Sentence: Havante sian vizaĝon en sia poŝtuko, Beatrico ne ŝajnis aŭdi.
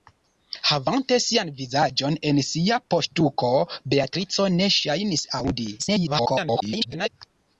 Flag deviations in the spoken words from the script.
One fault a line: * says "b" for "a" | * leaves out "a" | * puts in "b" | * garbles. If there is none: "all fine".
* garbles